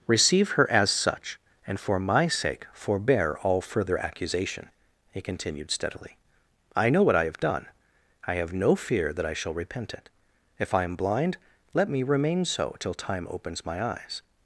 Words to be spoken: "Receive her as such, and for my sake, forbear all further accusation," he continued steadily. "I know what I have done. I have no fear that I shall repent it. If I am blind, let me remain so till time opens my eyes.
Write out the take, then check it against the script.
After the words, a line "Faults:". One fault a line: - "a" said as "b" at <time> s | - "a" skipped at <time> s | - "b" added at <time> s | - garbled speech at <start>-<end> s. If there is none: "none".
"Receive her as such, and for my sake, forbear all further accusation," he continued steadily. "I know what I have done. I have no fear that I shall repent it. If I am blind, let me remain so till time opens my eyes.
Faults:
none